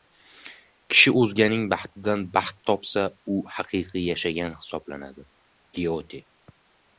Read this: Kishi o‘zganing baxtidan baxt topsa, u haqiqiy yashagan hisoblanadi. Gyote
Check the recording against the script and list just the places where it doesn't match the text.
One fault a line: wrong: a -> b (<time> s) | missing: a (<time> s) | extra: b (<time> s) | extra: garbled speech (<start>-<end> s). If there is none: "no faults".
no faults